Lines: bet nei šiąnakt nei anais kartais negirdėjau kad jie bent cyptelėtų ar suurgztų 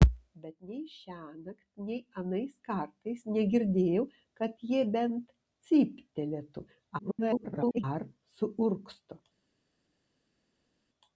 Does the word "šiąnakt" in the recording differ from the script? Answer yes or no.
no